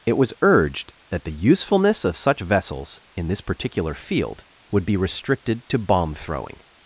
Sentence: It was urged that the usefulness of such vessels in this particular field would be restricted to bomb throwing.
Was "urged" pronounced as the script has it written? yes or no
yes